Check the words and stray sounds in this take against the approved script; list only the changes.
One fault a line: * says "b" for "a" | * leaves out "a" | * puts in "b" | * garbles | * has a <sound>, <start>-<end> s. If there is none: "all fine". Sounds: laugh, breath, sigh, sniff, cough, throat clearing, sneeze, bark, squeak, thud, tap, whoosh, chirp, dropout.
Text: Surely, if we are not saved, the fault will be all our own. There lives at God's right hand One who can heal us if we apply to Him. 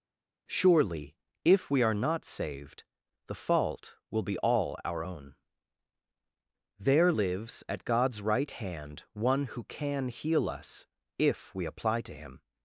all fine